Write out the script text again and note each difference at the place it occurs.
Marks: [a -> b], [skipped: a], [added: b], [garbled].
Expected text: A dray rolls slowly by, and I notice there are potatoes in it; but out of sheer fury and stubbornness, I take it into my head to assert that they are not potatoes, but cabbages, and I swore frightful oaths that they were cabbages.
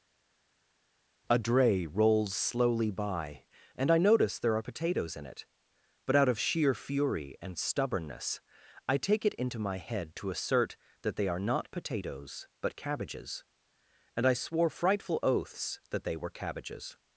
A dray rolls slowly by, and I notice there are potatoes in it; but out of sheer fury and stubbornness, I take it into my head to assert that they are not potatoes, but cabbages, and I swore frightful oaths that they were cabbages.